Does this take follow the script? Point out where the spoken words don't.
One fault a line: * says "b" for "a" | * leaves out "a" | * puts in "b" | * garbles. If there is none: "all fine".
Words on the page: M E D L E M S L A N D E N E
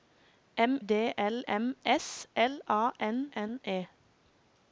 * leaves out "E"
* leaves out "E"
* leaves out "D E"